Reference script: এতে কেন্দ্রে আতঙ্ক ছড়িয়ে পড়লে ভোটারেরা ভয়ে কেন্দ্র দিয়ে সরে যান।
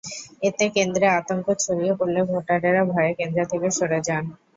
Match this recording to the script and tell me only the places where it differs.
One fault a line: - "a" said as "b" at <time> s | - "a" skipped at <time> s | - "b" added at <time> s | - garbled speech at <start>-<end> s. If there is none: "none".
- "দিয়ে" said as "থেকে" at 3.5 s